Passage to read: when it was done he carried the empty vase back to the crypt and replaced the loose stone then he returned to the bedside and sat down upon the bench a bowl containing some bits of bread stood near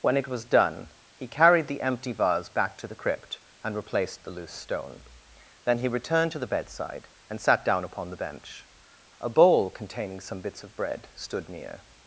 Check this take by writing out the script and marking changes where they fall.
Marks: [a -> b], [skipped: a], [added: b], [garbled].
when it was done he carried the empty vase back to the crypt and replaced the loose stone then he returned to the bedside and sat down upon the bench a bowl containing some bits of bread stood near